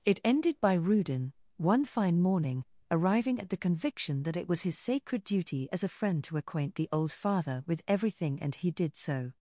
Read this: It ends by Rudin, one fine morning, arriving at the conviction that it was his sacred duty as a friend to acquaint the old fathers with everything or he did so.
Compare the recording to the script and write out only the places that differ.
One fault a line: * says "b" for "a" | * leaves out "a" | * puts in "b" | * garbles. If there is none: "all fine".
* says "ended" for "ends"
* says "father" for "fathers"
* says "and" for "or"